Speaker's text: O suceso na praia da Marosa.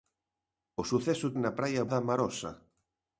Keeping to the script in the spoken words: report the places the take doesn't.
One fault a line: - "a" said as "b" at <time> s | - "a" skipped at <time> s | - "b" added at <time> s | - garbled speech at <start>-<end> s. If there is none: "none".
none